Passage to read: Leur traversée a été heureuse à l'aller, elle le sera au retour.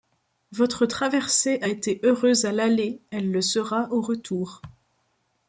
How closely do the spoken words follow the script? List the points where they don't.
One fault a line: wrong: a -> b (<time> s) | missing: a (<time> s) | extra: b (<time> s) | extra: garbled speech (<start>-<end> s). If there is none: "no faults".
wrong: Leur -> Votre (0.5 s)